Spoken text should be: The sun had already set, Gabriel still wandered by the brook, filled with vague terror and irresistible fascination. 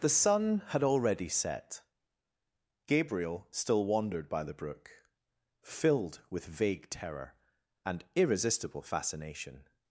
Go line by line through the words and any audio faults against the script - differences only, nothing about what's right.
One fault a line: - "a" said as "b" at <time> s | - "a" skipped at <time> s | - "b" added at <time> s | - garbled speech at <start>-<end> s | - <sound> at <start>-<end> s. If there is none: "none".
none